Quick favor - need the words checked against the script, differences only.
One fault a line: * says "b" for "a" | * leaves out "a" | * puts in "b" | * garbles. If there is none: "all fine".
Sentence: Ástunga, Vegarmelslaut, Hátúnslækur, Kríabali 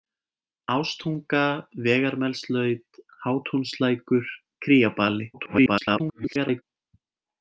* garbles